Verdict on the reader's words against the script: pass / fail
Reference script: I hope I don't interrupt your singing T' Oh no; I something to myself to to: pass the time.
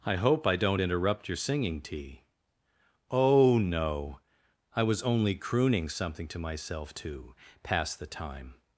fail